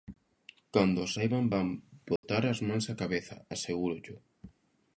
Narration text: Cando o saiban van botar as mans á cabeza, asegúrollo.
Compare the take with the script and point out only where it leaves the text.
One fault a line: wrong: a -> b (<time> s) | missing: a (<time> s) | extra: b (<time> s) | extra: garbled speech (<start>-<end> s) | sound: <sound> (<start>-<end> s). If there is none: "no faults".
sound: dropout (2.2-2.2 s)